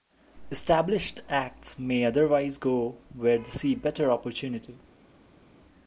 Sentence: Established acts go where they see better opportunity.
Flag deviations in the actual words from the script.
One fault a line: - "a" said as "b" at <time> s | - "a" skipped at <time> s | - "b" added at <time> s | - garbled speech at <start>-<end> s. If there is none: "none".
- "may otherwise" added at 1.8 s